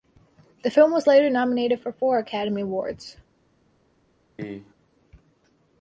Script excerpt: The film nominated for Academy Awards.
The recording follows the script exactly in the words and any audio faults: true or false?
false